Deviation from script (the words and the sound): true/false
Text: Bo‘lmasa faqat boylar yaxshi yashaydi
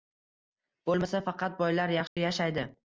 true